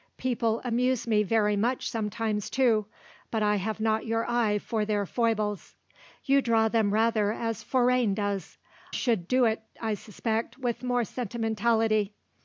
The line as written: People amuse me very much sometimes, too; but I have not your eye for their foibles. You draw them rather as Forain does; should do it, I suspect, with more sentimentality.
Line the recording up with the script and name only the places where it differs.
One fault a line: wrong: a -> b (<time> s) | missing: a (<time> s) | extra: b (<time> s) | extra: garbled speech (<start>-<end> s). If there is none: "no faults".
no faults